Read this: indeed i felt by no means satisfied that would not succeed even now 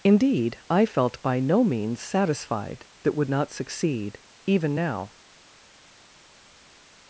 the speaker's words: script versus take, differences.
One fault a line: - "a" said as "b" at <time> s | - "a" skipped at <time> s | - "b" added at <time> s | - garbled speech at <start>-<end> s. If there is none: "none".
none